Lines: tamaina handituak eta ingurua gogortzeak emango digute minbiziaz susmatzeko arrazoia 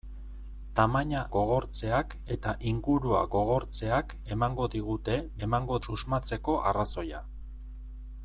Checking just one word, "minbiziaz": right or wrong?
wrong